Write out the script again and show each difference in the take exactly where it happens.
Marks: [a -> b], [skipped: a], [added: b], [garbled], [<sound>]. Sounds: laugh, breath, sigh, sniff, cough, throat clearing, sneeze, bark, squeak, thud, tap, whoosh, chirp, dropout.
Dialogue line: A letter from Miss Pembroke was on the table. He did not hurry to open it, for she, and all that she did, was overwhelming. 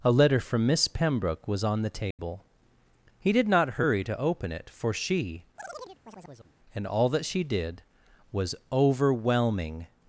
A letter from Miss Pembroke was on the table. [dropout] He did not hurry to open it, for she, [chirp] and all that she did, was overwhelming.